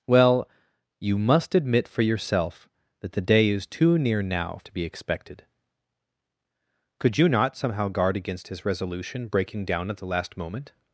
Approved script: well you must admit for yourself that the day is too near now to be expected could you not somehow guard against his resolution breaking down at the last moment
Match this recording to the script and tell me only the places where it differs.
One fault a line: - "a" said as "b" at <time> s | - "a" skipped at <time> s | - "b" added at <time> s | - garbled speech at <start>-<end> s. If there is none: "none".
none